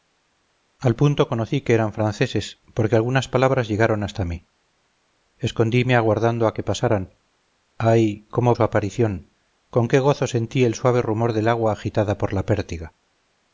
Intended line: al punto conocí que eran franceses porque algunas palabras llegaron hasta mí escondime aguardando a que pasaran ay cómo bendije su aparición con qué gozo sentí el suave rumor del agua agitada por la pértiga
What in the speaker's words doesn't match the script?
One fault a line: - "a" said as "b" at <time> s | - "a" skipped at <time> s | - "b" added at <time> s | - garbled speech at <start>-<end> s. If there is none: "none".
- "bendije" skipped at 8.6 s